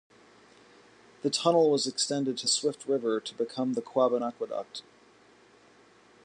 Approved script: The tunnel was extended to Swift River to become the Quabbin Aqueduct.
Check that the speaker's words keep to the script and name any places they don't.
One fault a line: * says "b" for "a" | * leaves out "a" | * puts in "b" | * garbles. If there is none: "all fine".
all fine